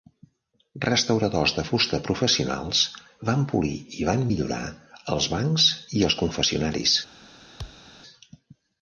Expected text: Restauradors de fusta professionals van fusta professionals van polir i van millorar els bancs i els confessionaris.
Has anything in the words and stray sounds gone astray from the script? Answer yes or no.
yes